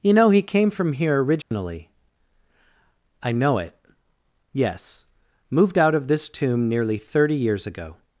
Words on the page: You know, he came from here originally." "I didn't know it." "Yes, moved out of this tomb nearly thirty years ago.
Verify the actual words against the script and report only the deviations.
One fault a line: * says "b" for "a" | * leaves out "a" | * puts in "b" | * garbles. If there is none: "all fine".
* leaves out "didn't"